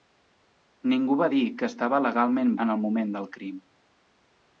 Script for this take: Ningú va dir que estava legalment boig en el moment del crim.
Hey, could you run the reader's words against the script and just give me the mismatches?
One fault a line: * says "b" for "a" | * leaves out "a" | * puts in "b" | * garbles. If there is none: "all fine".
* leaves out "boig"